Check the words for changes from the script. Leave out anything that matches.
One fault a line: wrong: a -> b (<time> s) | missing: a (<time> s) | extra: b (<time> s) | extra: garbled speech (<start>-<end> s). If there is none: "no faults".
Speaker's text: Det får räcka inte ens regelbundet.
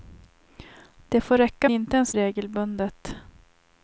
no faults